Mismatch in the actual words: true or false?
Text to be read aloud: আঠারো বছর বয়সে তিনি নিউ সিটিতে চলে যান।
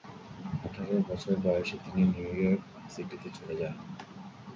true